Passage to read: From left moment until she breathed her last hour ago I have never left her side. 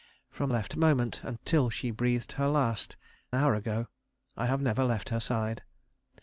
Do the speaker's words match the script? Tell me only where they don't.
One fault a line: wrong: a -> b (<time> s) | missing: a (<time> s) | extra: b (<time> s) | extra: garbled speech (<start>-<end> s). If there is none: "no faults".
no faults